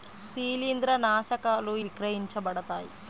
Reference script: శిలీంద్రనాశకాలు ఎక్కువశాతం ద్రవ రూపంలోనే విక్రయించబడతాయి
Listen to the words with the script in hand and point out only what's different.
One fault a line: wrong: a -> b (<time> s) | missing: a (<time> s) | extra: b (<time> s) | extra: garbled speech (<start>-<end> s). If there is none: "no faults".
missing: ఎక్కువశాతం ద్రవ రూపంలోనే (1.8 s)